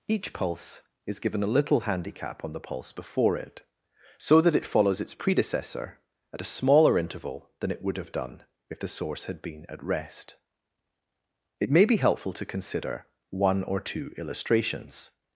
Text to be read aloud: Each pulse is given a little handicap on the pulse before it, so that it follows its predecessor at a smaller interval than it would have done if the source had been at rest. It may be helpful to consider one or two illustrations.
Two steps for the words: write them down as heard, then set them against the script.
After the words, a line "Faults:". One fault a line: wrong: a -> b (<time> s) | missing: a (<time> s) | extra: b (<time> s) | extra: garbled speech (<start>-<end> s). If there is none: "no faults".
Each pulse is given a little handicap on the pulse before it, so that it follows its predecessor at a smaller interval than it would have done if the source had been at rest. It may be helpful to consider one or two illustrations.
Faults:
no faults